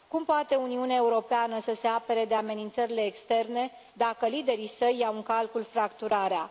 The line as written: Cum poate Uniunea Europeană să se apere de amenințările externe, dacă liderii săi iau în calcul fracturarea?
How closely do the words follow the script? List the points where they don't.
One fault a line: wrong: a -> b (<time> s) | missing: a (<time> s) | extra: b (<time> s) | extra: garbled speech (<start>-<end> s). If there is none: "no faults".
no faults